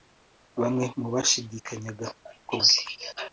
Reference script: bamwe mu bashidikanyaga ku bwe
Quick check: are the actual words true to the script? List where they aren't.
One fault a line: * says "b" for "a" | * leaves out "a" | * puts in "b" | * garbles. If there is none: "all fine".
all fine